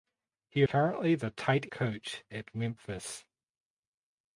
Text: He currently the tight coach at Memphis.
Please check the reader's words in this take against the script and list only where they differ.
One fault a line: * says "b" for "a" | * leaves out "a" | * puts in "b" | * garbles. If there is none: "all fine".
all fine